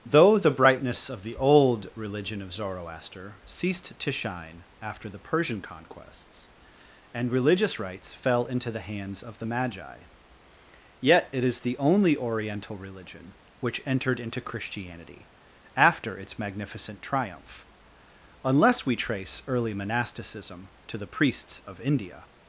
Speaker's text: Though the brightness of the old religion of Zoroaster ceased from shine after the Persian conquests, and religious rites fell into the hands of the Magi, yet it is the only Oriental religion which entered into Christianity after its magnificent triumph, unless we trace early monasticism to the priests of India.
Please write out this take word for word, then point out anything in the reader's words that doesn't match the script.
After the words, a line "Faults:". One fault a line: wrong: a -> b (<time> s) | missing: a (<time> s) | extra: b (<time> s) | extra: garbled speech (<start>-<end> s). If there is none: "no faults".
Though the brightness of the old religion of Zoroaster ceased to shine after the Persian conquests, and religious rites fell into the hands of the Magi, yet it is the only Oriental religion which entered into Christianity after its magnificent triumph, unless we trace early monasticism to the priests of India.
Faults:
wrong: from -> to (4.0 s)